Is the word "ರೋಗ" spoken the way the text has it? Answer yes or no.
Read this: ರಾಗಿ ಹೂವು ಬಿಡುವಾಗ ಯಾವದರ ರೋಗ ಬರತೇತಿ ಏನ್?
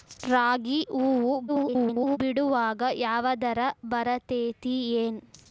no